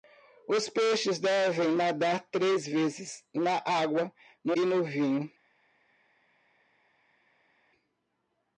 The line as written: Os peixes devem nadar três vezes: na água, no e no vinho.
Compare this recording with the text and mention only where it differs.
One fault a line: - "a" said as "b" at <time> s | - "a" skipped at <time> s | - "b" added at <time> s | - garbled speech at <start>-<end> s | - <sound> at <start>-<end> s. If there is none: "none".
none